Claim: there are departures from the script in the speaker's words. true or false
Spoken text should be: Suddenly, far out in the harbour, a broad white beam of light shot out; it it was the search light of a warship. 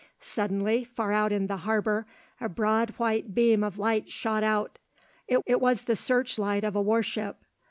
false